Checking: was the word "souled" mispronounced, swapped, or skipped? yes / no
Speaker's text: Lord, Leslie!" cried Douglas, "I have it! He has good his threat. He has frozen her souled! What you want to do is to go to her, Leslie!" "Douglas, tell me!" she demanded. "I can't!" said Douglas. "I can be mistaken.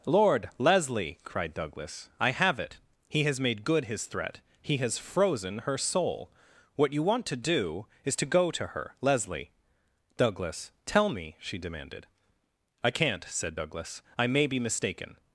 yes